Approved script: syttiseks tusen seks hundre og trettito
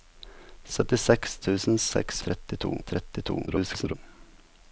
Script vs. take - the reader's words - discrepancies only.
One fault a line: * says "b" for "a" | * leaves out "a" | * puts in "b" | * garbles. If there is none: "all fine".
* says "trettito" for "hundre"
* garbles